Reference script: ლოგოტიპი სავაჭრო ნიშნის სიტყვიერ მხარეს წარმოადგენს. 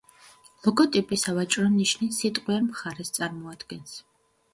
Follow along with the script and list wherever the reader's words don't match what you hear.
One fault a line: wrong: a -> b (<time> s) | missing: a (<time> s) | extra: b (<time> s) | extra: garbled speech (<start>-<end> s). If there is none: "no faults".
no faults